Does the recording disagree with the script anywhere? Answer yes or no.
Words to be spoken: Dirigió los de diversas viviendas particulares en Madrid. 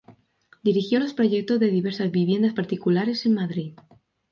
yes